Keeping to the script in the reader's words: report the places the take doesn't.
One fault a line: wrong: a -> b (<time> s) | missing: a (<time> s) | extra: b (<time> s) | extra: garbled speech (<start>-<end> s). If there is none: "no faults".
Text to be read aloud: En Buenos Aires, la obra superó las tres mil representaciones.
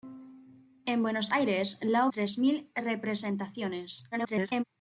missing: obra superó las (2.1 s)
extra: garbled speech (4.1-4.6 s)